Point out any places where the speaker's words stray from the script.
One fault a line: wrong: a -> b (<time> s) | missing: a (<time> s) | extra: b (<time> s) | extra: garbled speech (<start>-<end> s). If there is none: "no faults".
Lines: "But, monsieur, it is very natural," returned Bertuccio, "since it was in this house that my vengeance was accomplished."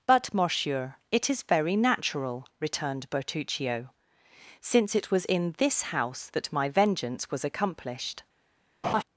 no faults